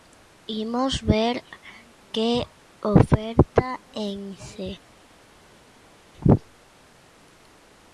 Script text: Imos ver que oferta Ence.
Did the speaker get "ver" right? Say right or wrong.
right